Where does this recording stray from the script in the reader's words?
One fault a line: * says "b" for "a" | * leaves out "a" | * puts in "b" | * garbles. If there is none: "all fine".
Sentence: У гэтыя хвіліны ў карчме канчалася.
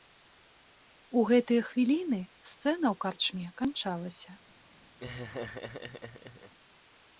* puts in "сцэна"